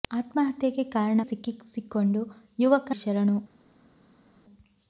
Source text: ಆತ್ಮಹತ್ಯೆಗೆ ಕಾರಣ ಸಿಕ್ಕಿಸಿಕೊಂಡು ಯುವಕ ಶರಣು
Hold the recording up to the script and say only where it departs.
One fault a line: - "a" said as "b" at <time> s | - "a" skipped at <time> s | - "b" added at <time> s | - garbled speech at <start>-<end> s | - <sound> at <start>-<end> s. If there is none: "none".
none